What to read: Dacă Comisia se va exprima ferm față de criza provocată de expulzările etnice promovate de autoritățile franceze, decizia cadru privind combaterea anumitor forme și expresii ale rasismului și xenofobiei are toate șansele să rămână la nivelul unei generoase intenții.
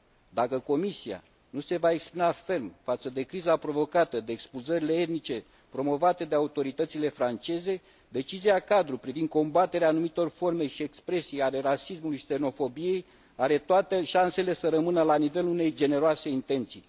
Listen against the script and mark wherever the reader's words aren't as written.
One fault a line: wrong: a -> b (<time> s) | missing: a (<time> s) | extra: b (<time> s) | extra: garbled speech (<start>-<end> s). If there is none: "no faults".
extra: nu (1.5 s)